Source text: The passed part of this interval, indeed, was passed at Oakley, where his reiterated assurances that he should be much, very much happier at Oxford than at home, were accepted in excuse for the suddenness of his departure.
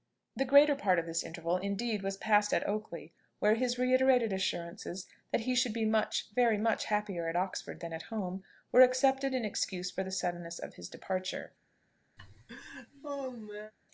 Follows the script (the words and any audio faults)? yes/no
no